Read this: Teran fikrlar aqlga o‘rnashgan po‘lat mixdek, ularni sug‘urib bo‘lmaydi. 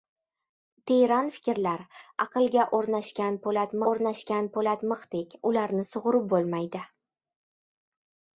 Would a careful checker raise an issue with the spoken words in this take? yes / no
yes